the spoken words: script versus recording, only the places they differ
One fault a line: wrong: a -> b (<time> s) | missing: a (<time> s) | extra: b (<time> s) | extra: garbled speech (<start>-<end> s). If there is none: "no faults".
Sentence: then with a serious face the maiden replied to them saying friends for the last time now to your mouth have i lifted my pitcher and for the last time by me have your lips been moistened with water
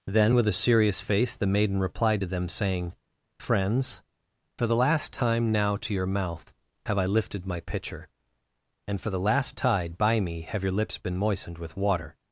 wrong: time -> tide (9.6 s)